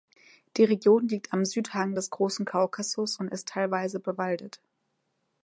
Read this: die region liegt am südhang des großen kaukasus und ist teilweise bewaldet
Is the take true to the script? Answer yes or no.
yes